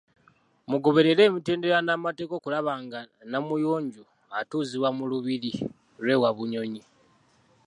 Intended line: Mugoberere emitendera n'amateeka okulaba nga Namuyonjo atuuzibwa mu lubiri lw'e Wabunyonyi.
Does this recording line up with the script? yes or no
yes